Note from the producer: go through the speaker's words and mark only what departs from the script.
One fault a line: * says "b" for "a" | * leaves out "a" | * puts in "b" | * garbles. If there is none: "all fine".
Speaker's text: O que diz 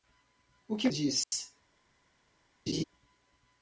all fine